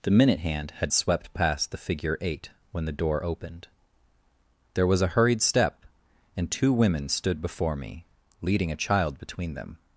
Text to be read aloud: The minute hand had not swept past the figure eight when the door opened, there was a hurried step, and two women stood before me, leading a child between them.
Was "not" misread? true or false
true